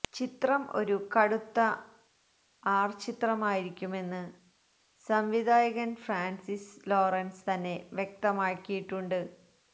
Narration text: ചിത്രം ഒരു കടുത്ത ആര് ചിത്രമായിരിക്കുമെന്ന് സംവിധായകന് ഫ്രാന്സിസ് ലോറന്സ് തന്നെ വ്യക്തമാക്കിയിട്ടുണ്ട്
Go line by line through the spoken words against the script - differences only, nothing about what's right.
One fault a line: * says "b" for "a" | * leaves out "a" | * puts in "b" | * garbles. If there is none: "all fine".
all fine